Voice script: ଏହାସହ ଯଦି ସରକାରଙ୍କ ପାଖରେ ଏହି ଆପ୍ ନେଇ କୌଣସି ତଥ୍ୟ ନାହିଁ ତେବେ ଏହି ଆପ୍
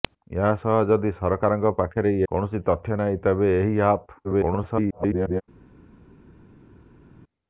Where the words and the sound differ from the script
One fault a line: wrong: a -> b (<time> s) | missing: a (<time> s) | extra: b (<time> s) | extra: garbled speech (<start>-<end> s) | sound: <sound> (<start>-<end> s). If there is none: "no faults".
missing: ଏହି ଆପ୍ ନେଇ (2.1 s)
extra: garbled speech (4.2-5.4 s)